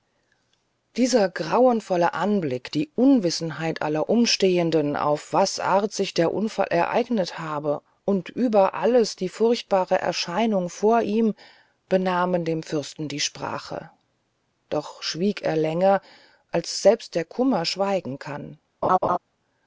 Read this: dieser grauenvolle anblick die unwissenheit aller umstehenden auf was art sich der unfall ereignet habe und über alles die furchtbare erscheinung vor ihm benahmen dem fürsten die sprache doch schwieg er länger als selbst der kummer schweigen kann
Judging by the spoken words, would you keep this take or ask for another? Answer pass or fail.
pass